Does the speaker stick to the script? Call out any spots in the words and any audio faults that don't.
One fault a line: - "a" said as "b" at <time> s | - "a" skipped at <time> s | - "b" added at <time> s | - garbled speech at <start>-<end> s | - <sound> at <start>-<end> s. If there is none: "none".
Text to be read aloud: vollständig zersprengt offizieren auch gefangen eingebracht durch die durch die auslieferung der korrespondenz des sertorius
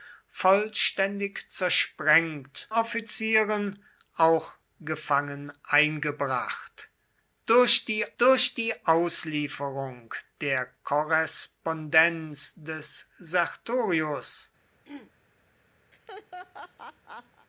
- throat clearing at 14.8-15.1 s
- laugh at 15.9-17.5 s